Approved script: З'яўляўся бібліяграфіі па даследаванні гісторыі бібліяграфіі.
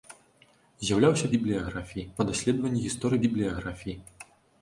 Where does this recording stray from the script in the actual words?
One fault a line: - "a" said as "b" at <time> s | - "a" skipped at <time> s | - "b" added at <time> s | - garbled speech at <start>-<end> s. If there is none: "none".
none